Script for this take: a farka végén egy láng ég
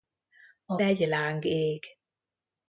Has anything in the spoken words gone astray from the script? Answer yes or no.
yes